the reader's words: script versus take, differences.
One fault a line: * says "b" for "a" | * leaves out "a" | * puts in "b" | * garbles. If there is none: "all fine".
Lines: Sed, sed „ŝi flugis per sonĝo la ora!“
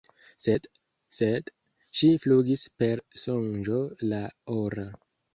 all fine